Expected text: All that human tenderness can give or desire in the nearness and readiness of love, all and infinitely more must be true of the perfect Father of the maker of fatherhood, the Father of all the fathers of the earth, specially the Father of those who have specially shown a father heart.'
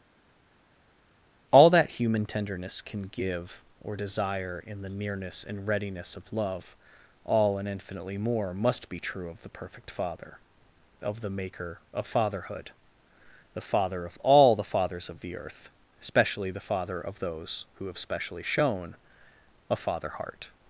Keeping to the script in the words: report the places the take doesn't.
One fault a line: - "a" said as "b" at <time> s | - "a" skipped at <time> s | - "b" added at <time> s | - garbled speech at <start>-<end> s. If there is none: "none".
- "specially" said as "especially" at 16.0 s